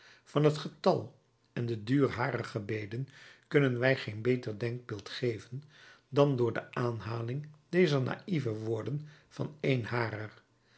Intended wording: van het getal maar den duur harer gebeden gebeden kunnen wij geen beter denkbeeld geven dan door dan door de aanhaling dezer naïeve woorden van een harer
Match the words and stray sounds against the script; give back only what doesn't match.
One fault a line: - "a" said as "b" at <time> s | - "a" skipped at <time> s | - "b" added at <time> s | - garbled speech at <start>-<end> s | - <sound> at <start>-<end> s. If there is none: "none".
- "maar" said as "en" at 1.5 s
- "gebeden" skipped at 3.1 s
- "dan door" skipped at 6.5 s